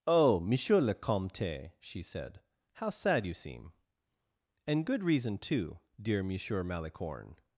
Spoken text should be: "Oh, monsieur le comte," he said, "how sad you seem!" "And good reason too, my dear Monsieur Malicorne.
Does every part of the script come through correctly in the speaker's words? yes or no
no